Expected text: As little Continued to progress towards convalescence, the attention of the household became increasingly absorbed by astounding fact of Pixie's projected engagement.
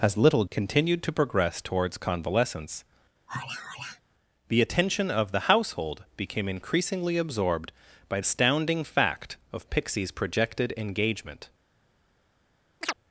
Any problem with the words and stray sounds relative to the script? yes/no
yes